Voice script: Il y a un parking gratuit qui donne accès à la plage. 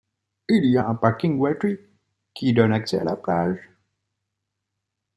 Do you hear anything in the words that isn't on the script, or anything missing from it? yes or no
no